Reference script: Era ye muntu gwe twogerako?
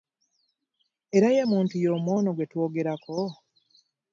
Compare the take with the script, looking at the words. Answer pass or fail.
fail